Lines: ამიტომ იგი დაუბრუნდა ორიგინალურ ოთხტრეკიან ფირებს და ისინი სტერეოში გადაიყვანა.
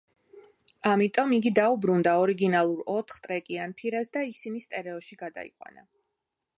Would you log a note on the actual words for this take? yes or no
no